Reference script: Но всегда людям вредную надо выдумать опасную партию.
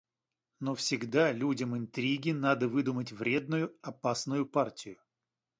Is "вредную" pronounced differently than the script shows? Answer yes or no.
yes